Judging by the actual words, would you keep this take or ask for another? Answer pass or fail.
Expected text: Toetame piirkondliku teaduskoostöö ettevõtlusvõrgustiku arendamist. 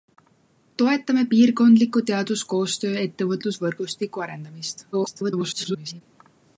fail